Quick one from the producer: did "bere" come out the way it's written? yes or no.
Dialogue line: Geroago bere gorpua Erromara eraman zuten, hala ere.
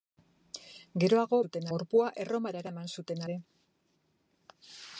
no